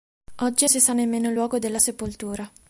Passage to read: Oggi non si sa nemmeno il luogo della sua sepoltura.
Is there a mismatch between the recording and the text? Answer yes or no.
yes